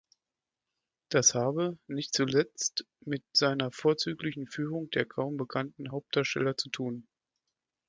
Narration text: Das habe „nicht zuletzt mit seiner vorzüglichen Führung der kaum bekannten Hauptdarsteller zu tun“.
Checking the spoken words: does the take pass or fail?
pass